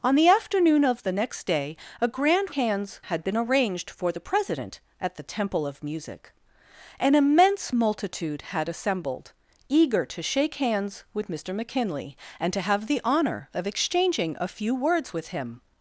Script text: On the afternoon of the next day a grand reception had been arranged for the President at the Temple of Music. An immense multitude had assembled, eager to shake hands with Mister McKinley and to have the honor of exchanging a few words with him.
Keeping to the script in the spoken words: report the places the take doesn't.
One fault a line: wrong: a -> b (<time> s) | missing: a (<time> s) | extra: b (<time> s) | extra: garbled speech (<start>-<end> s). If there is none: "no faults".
wrong: reception -> hands (2.5 s)